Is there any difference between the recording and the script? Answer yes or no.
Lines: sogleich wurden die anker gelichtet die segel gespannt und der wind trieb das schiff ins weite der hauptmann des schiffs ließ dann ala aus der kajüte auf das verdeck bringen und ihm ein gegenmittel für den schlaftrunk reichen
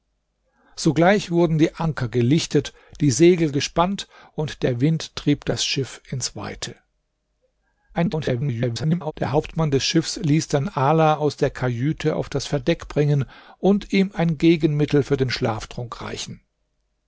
yes